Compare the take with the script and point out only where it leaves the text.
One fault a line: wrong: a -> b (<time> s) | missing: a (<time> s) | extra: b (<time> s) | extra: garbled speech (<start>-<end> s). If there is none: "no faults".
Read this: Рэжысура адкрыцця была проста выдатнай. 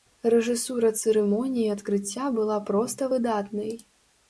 extra: цырымоніі (1.0 s)